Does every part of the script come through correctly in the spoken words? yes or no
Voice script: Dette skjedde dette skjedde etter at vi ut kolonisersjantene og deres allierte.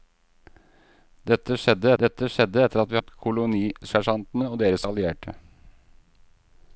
yes